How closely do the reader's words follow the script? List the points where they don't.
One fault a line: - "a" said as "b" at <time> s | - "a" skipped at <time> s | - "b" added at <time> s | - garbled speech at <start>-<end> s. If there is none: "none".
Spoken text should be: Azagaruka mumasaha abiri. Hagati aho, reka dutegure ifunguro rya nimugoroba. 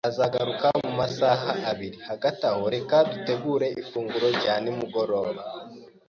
none